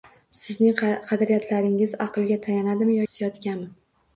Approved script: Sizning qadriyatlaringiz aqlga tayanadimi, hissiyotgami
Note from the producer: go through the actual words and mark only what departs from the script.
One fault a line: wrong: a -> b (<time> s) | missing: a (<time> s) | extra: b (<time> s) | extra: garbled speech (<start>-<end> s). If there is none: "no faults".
no faults